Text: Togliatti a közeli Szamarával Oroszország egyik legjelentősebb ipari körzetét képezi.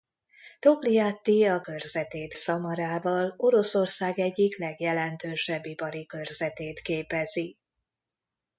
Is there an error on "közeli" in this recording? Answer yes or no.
yes